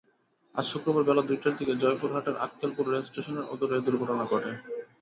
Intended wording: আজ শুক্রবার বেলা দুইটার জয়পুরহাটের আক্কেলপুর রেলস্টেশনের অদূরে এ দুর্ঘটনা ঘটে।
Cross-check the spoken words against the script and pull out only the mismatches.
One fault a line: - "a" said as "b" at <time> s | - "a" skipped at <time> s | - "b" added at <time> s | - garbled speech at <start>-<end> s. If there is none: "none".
- "দিকে" added at 1.6 s